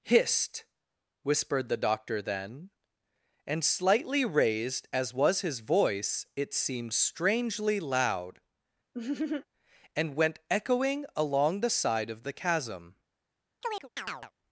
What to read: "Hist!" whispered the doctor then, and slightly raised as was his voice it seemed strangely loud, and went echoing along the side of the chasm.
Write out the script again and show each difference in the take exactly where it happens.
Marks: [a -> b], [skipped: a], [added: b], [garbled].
"Hist!" whispered the doctor then, and slightly raised as was his voice it seemed strangely loud, and went echoing along the side of the chasm.